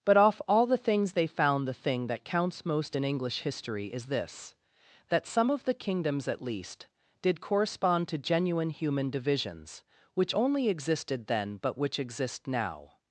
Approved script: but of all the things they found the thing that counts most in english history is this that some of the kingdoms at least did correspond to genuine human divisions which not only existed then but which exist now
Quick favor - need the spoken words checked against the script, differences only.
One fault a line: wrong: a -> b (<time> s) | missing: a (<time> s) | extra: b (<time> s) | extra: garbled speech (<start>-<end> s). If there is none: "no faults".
wrong: of -> off (0.2 s)
missing: not (10.3 s)